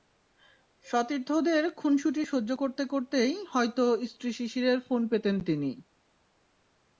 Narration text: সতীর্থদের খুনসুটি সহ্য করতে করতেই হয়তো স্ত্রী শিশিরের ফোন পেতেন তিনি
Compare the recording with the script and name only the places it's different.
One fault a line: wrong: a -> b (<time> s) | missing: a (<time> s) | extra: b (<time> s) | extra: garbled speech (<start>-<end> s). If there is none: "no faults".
no faults